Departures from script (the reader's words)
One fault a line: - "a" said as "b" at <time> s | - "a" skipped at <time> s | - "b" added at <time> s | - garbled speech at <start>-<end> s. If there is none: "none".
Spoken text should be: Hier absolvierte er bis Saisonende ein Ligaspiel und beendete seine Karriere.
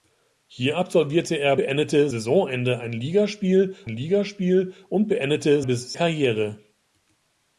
- "bis" said as "beendete" at 1.5 s
- "Ligaspiel" added at 3.9 s
- "seine" said as "bis" at 5.6 s